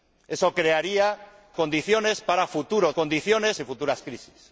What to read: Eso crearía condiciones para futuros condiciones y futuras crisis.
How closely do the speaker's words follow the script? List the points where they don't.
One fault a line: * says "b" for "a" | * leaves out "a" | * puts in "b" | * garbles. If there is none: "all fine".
all fine